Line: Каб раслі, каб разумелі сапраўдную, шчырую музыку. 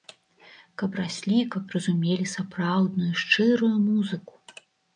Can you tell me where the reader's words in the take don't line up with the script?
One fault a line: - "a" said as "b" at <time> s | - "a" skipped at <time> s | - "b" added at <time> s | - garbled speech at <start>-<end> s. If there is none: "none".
none